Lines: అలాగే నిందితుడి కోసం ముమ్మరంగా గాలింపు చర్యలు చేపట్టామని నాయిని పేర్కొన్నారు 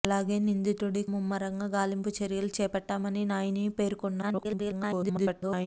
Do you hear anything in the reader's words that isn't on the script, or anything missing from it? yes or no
yes